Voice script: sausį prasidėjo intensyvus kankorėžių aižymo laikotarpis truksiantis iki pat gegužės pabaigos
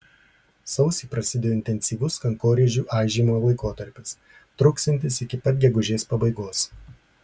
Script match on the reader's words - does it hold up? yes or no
yes